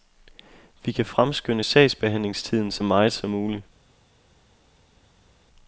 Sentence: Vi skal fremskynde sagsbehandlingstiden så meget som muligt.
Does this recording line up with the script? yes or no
no